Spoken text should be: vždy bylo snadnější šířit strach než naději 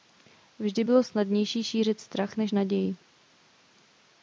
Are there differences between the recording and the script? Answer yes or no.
no